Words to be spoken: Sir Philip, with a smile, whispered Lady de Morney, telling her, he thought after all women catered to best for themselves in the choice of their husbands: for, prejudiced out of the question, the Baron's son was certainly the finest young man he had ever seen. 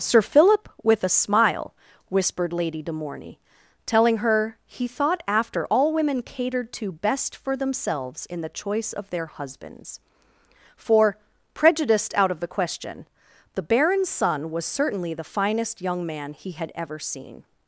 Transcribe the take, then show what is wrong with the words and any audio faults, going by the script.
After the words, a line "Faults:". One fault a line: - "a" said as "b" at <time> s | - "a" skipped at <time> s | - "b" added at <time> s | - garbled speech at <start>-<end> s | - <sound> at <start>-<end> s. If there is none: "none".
Sir Philip, with a smile, whispered Lady de Morney, telling her, he thought after all women catered to best for themselves in the choice of their husbands: for, prejudiced out of the question, the Baron's son was certainly the finest young man he had ever seen.
Faults:
none